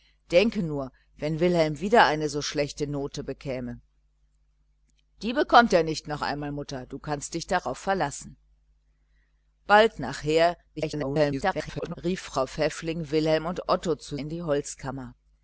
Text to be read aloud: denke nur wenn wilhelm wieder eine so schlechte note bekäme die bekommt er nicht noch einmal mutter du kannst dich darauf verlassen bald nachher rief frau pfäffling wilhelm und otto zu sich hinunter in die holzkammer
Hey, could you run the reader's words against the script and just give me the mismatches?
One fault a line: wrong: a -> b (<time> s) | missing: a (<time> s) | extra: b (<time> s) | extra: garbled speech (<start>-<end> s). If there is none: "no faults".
extra: garbled speech (10.8-12.0 s)
missing: sich hinunter (14.2 s)